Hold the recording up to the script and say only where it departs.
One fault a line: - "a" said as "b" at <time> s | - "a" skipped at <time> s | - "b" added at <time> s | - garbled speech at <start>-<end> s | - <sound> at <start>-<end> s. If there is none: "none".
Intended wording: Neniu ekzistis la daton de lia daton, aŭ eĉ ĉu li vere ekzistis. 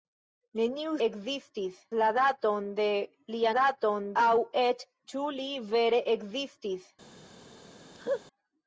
- laugh at 7.9-8.2 s